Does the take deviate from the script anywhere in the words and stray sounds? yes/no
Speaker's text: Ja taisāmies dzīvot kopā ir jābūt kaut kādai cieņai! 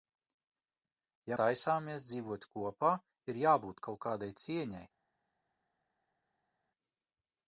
no